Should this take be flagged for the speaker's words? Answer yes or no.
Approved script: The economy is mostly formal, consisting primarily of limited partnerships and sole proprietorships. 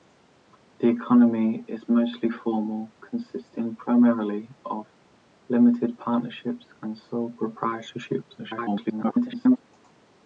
yes